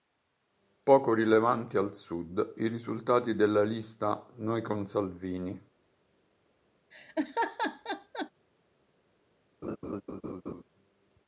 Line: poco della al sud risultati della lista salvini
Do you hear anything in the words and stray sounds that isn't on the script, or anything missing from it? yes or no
yes